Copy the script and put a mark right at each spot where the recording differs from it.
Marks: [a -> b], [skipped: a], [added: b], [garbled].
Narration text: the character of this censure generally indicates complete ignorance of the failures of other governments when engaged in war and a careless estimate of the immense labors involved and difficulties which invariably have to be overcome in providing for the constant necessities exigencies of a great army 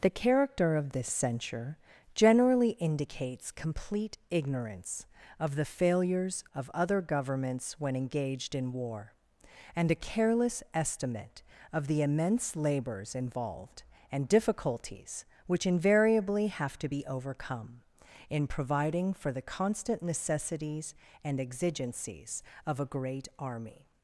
the character of this censure generally indicates complete ignorance of the failures of other governments when engaged in war and a careless estimate of the immense labors involved and difficulties which invariably have to be overcome in providing for the constant necessities [added: and] exigencies of a great army